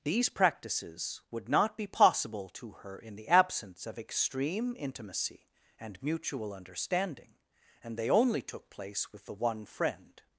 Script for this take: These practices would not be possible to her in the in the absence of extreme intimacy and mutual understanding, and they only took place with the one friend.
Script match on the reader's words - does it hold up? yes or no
no